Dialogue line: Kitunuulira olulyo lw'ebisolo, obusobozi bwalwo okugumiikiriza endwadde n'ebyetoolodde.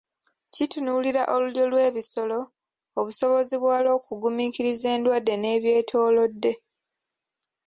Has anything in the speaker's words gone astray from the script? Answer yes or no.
no